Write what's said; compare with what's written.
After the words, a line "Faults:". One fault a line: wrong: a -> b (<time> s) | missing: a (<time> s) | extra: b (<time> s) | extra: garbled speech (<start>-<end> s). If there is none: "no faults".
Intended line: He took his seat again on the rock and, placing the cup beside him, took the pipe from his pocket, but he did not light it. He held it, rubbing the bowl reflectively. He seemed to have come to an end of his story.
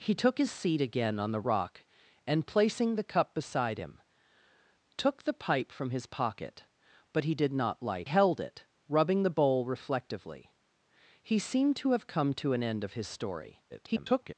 He took his seat again on the rock and, placing the cup beside him, took the pipe from his pocket, but he did not light held it, rubbing the bowl reflectively. He seemed to have come to an end of his story. [garbled]
Faults:
missing: it He (8.1 s)
extra: garbled speech (13.7-14.3 s)